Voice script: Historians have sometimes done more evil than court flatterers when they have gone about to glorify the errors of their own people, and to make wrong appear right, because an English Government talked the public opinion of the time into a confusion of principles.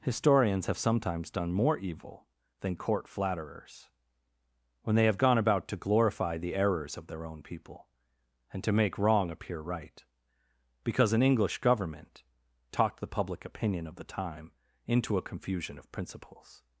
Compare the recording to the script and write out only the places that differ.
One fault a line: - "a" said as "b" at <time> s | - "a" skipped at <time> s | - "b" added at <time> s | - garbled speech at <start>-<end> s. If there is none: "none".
none